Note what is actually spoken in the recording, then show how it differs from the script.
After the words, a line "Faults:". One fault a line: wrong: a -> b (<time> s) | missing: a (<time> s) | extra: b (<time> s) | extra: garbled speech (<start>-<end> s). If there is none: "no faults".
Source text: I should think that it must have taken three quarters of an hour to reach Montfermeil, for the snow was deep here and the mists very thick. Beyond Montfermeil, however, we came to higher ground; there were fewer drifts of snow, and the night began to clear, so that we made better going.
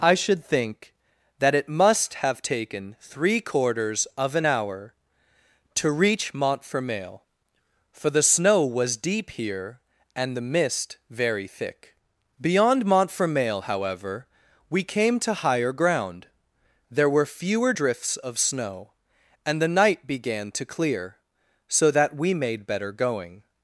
I should think that it must have taken three quarters of an hour to reach Montfermeil, for the snow was deep here and the mist very thick. Beyond Montfermeil, however, we came to higher ground; there were fewer drifts of snow, and the night began to clear, so that we made better going.
Faults:
wrong: mists -> mist (10.5 s)